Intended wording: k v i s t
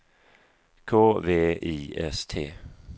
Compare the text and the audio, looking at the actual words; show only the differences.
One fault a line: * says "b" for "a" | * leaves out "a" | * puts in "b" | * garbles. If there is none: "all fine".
all fine